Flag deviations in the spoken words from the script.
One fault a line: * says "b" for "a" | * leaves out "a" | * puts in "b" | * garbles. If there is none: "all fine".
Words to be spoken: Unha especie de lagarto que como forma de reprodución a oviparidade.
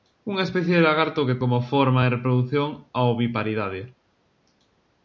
all fine